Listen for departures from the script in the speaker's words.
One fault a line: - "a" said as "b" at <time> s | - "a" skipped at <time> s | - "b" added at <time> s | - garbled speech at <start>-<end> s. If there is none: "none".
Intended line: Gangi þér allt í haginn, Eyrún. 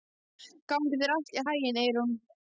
none